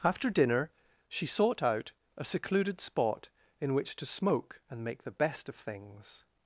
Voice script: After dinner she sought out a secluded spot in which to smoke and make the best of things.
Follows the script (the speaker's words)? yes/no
yes